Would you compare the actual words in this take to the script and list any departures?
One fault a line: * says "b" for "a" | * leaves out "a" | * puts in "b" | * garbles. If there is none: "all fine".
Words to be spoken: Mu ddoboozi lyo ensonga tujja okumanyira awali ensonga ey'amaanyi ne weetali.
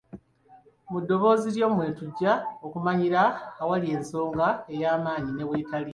* says "mwe" for "ensonga"